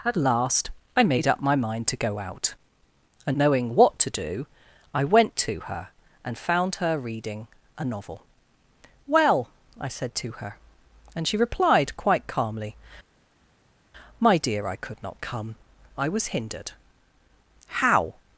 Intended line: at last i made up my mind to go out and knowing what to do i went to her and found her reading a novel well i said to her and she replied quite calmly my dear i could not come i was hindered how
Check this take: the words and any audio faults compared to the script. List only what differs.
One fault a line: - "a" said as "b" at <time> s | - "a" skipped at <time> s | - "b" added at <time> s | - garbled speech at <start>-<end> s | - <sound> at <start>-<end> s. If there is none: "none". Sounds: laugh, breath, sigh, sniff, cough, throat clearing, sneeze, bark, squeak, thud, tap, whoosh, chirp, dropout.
none